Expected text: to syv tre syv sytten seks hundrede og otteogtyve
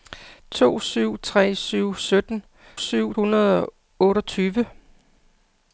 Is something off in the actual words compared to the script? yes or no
yes